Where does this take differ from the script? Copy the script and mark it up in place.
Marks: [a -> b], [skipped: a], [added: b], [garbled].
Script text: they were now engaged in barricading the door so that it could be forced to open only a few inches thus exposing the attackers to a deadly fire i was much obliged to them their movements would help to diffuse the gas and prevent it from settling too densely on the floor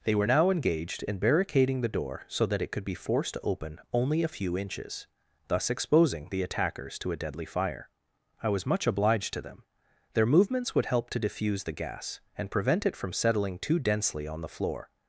they were now engaged in barricading the door so that it could be forced to open only a few inches thus exposing the attackers to a deadly fire i was much obliged to them their movements would help to diffuse the gas and prevent it from settling too densely on the floor